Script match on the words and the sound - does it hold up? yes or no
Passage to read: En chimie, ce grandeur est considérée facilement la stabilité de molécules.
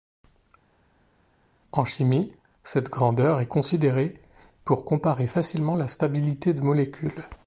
no